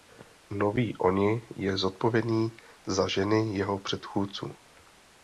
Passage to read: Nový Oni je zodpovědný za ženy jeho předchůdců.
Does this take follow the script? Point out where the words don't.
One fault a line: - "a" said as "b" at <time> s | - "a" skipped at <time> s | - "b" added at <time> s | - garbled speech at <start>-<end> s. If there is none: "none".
none